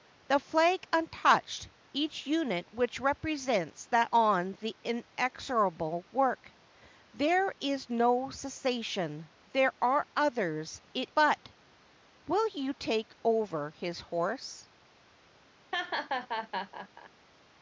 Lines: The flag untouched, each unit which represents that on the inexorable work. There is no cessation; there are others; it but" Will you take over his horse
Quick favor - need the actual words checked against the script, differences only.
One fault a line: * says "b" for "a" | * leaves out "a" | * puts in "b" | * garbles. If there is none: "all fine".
all fine